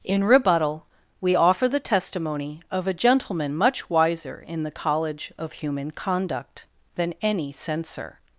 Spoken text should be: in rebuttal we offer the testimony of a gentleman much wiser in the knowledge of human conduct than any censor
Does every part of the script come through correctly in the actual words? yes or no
no